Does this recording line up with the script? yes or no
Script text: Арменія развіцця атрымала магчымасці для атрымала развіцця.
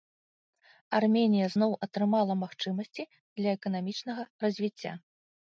no